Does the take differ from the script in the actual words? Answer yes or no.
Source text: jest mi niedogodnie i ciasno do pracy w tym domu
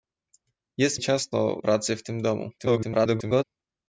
yes